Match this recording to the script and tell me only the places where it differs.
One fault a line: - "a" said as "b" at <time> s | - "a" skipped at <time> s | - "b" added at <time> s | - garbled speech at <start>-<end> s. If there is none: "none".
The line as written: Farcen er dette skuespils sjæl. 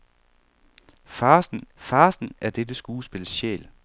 - "farcen" added at 1.7 s